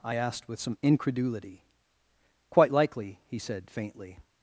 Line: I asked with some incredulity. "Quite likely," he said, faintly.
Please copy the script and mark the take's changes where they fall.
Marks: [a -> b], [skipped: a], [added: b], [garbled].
I asked with some incredulity. "Quite likely," he said, faintly.